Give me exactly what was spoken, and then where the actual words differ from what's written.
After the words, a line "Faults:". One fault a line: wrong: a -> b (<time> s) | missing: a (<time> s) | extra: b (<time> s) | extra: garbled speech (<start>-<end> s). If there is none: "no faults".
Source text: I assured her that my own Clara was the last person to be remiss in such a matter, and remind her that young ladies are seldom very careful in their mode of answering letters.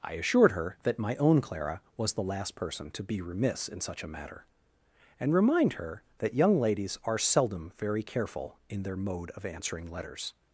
I assured her that my own Clara was the last person to be remiss in such a matter, and remind her that young ladies are seldom very careful in their mode of answering letters.
Faults:
no faults